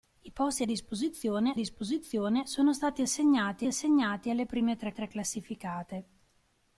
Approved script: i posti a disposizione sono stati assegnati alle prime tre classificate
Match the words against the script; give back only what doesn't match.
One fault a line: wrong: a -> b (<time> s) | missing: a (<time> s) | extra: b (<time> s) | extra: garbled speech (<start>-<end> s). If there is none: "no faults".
extra: disposizione (1.5 s)
extra: assegnati (3.7 s)
extra: tre (4.9 s)